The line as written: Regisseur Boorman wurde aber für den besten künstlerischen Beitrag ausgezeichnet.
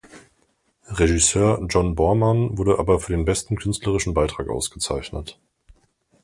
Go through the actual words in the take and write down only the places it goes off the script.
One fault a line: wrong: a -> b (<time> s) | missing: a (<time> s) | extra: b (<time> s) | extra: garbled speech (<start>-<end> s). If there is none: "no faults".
extra: John (1.7 s)